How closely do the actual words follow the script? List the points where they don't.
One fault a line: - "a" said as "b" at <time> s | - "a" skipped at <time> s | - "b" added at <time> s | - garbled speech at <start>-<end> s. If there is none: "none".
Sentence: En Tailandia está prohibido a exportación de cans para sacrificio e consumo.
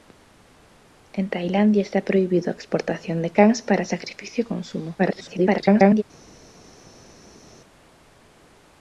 - garbled speech at 5.0-6.0 s